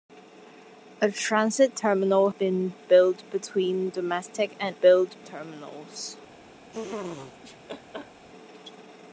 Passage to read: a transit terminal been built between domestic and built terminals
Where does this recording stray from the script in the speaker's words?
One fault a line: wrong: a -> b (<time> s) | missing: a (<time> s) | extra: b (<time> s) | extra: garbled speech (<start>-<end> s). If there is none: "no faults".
no faults